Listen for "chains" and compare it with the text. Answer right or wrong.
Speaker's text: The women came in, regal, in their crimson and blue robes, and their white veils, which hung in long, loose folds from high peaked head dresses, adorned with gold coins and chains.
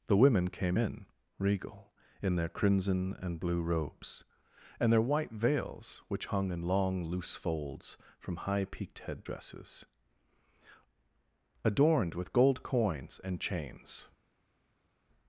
right